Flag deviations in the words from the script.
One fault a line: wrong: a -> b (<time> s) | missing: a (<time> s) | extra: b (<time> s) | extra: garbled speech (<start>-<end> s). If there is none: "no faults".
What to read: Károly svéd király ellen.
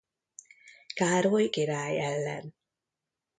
missing: svéd (1.5 s)